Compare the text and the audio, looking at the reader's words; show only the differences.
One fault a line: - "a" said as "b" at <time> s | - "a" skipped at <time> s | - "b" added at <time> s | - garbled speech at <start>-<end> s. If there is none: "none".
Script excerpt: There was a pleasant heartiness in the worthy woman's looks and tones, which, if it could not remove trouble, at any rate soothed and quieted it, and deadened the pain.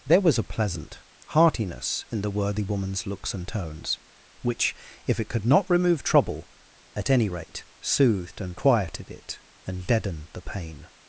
none